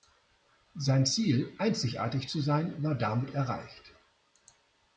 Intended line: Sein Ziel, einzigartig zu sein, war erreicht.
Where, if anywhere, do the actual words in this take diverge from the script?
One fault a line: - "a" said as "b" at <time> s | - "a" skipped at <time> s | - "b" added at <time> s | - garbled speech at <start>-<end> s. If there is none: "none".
- "damit" added at 2.9 s